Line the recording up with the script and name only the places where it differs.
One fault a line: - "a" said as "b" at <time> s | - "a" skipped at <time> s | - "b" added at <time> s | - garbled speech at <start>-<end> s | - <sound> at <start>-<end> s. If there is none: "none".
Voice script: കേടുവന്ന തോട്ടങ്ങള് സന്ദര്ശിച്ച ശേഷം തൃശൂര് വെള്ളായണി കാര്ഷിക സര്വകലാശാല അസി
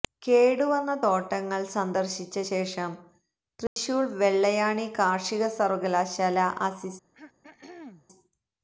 - dropout at 3.7-3.8 s
- throat clearing at 7.1-8.1 s